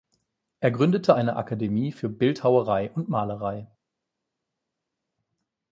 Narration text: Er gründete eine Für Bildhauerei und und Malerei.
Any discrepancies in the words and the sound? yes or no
yes